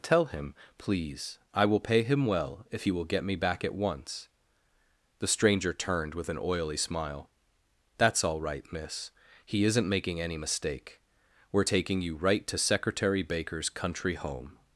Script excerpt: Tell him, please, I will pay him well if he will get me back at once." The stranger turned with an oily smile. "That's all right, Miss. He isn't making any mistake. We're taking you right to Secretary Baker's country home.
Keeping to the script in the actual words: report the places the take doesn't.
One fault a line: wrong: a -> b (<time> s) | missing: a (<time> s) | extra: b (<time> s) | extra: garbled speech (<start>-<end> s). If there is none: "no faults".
no faults